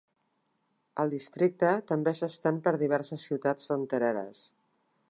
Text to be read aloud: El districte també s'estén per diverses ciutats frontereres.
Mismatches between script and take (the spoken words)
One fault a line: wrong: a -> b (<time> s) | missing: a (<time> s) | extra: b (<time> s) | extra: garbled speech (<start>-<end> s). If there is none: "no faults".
no faults